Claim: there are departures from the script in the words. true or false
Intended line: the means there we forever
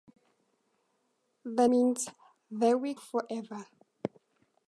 false